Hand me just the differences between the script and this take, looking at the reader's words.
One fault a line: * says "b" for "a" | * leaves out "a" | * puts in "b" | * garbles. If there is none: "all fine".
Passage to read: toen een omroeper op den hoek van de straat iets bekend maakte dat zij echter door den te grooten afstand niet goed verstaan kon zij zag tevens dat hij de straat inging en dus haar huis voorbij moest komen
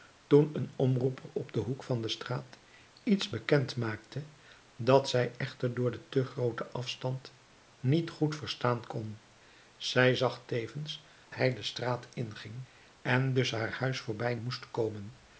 * leaves out "dat"